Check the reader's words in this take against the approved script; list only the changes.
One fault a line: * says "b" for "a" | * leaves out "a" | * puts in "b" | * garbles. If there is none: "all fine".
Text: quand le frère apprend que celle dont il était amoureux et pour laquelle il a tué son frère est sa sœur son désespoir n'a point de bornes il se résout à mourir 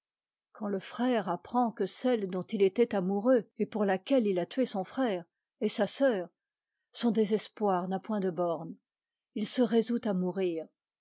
all fine